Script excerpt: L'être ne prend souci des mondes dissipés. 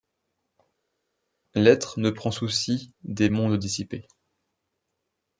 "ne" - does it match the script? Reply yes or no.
yes